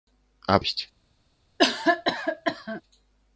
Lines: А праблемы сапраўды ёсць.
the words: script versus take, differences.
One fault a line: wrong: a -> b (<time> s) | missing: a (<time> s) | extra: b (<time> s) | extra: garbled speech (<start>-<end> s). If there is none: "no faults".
missing: праблемы сапраўды (0.6 s)